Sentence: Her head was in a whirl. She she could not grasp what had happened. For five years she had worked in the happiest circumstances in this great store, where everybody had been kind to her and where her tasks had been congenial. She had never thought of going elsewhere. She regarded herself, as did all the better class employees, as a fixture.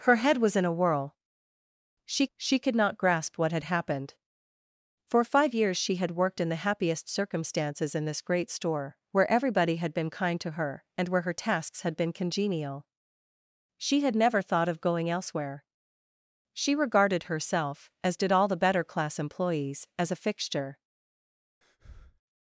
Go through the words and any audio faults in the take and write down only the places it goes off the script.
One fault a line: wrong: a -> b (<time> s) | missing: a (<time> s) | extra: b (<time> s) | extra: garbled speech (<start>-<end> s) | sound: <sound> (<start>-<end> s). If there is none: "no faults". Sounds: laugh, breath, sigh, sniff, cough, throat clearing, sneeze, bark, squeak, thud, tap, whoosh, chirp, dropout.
sound: breath (21.6-22.2 s)